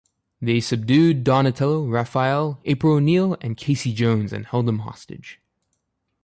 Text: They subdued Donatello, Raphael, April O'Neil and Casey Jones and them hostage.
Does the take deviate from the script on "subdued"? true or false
false